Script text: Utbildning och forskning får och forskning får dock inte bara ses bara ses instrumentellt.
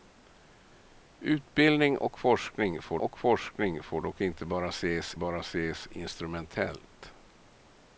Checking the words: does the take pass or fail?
pass